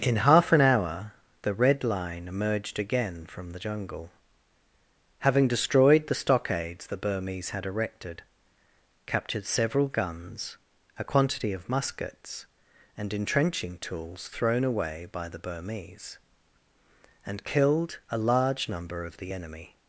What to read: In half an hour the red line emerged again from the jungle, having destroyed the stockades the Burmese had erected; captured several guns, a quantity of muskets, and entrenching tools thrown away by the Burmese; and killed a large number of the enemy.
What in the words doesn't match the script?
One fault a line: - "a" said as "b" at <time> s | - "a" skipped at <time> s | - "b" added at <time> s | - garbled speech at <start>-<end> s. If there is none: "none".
none